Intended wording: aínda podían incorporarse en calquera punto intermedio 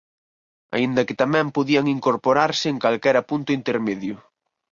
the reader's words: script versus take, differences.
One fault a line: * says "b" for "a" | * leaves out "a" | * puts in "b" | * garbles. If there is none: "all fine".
* puts in "que tamén"